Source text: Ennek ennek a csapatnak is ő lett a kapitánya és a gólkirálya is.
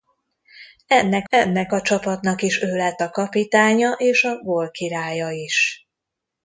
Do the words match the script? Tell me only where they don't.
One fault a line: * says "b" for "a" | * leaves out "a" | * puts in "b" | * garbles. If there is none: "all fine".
all fine